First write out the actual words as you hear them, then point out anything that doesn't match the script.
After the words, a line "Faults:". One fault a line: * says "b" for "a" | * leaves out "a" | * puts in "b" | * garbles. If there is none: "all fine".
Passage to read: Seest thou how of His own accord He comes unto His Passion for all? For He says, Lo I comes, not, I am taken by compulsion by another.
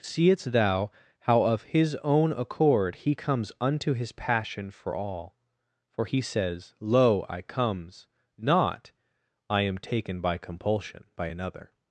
Seest thou how of His own accord He comes unto His Passion for all? For He says, Lo I comes, not, I am taken by compulsion by another.
Faults:
all fine